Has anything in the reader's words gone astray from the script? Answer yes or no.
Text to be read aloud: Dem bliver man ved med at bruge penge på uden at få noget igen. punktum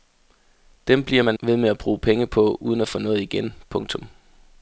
no